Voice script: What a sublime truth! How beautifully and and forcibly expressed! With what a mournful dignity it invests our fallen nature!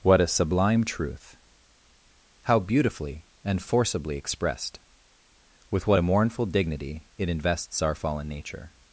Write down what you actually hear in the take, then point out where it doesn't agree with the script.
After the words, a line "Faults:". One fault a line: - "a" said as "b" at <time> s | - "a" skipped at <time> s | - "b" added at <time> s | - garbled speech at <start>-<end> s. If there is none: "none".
What a sublime truth! How beautifully and forcibly expressed! With what a mournful dignity it invests our fallen nature!
Faults:
- "and" skipped at 3.6 s